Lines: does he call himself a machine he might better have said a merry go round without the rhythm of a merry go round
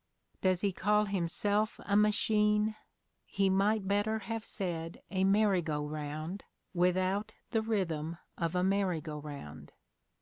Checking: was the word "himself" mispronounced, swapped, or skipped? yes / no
no